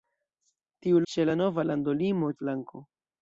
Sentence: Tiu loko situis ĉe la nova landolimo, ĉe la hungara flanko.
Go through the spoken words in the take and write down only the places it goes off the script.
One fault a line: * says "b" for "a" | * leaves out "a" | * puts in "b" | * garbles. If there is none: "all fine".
* leaves out "loko situis"
* leaves out "ĉe la hungara"